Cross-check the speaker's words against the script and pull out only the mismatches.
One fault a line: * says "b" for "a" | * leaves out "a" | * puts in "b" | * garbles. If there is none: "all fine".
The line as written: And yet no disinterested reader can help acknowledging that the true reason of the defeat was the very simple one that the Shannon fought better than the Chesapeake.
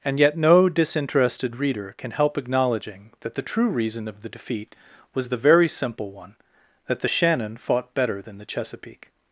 all fine